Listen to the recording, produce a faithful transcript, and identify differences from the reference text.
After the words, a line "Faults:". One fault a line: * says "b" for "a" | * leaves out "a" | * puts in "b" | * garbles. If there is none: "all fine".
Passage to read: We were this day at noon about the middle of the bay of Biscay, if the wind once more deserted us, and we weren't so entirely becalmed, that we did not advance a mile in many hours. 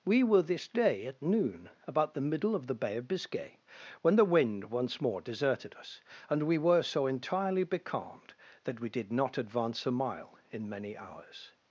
We were this day at noon about the middle of the bay of Biscay, when the wind once more deserted us, and we were so entirely becalmed, that we did not advance a mile in many hours.
Faults:
* says "when" for "if"
* says "were" for "weren't"